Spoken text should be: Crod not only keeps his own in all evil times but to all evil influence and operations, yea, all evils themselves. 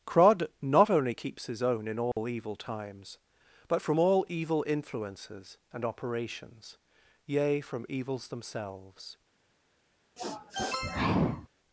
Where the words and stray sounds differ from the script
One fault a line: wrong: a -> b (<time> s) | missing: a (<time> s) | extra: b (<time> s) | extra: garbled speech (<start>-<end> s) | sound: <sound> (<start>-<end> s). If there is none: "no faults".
sound: dropout (2.1-2.2 s)
wrong: to -> from (3.8 s)
wrong: influence -> influences (4.6 s)
wrong: all -> from (7.6 s)
sound: sniff (10.2-11.5 s)